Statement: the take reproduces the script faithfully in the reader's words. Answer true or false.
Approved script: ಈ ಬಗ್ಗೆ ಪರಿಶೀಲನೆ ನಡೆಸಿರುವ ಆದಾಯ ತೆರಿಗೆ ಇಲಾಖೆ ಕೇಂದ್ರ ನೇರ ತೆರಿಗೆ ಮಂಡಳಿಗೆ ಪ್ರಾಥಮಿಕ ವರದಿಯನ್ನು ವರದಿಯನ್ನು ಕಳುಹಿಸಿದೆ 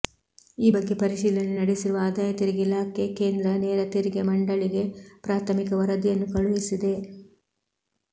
false